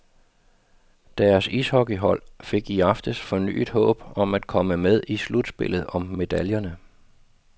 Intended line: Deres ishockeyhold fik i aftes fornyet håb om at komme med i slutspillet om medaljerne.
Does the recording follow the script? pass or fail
pass